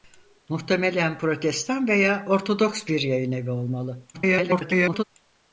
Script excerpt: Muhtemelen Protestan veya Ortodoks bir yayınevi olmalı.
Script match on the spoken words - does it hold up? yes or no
no